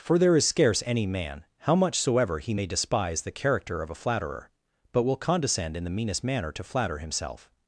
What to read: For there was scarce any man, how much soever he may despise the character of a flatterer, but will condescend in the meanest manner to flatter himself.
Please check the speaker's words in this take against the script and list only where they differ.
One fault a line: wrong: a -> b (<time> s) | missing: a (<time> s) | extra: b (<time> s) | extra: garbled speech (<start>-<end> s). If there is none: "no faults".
wrong: was -> is (0.3 s)